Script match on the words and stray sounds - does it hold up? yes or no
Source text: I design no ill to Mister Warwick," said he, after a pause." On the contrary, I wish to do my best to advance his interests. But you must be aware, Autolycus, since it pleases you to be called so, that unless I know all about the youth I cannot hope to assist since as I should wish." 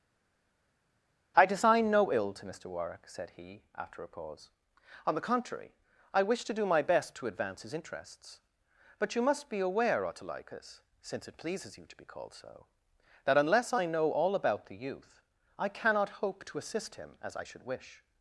no